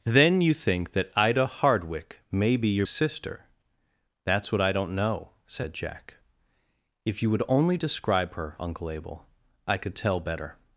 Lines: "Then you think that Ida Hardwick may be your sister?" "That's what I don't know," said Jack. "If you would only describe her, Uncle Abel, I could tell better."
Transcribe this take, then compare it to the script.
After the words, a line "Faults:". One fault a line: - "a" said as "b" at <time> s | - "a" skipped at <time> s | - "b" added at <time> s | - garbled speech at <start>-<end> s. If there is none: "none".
"Then you think that Ida Hardwick may be your sister?" "That's what I don't know," said Jack. "If you would only describe her, Uncle Abel, I could tell better."
Faults:
none